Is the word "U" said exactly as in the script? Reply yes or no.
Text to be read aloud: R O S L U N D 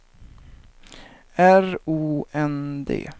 no